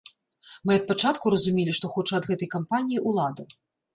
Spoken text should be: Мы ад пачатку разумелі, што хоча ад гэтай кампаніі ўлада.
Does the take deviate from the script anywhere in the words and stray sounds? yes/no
no